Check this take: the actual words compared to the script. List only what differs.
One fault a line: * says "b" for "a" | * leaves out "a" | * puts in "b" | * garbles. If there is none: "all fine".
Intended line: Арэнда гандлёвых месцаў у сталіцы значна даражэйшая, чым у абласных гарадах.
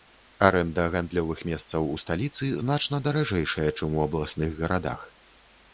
all fine